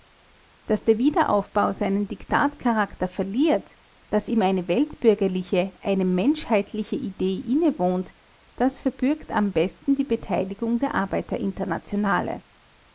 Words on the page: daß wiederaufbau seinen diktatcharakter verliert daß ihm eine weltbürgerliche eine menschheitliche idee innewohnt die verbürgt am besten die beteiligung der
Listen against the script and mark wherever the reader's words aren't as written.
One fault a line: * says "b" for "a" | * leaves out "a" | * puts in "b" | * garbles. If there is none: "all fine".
* puts in "der"
* says "das" for "die"